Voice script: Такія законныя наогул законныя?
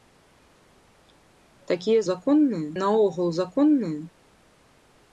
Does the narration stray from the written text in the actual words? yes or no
no